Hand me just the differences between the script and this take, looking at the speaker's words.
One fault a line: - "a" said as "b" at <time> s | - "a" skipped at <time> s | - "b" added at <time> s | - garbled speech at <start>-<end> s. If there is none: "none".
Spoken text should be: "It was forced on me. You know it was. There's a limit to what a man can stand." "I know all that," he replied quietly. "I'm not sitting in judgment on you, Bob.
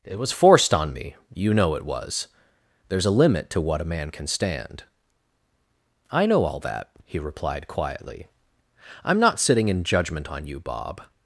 none